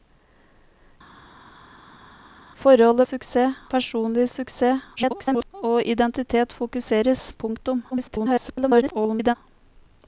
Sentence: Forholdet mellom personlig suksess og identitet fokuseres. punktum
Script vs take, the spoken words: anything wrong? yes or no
yes